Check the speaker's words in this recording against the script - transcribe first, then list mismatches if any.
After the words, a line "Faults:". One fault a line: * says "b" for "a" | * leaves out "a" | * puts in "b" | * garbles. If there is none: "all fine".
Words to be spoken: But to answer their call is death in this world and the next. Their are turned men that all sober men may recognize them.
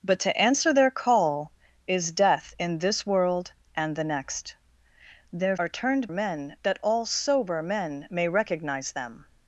But to answer their call is death in this world and the next. Their are turned men that all sober men may recognize them.
Faults:
all fine